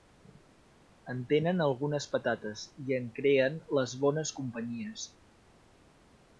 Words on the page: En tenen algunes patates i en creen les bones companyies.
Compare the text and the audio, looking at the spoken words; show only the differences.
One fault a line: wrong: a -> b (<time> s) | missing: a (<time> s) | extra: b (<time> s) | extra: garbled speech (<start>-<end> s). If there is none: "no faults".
no faults